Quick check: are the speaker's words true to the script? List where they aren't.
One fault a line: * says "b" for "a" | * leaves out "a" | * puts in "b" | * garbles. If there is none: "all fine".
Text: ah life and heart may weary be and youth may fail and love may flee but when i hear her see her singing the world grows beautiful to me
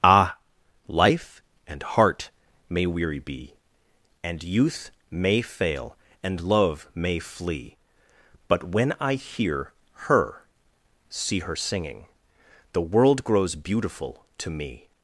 all fine